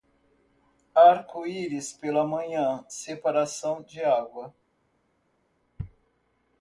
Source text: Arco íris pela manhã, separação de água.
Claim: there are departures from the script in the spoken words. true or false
false